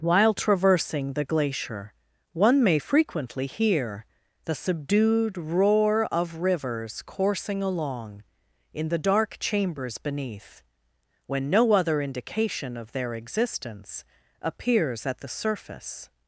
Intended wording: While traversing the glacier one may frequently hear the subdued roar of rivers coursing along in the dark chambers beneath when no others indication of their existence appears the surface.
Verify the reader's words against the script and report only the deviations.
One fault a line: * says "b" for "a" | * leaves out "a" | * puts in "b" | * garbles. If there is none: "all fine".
* says "other" for "others"
* puts in "at"